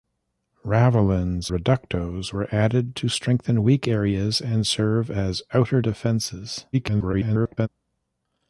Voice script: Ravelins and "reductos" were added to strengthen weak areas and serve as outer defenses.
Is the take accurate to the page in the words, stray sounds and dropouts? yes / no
no